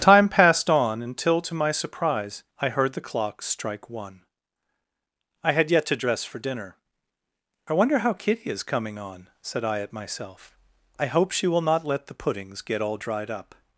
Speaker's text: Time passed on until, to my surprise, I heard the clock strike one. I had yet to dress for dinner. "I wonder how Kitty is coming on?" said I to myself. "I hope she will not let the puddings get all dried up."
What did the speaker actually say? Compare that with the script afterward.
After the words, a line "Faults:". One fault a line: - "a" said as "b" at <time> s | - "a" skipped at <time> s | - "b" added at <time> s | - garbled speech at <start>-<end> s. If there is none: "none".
Time passed on until, to my surprise, I heard the clock strike one. I had yet to dress for dinner. "I wonder how Kitty is coming on?" said I at myself. "I hope she will not let the puddings get all dried up."
Faults:
- "to" said as "at" at 9.8 s